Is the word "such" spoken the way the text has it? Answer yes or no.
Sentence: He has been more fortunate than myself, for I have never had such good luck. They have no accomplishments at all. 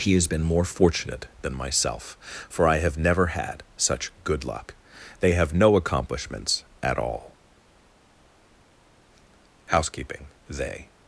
yes